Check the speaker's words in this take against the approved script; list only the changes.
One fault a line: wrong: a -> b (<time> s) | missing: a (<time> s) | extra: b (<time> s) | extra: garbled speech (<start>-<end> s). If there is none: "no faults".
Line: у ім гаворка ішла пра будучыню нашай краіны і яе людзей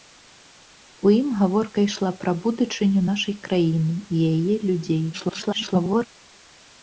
extra: garbled speech (5.1-6.1 s)